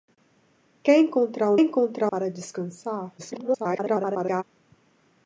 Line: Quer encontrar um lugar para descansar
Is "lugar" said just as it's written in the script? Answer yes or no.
no